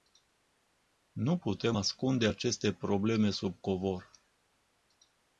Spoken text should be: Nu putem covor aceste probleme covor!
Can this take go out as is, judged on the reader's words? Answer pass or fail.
fail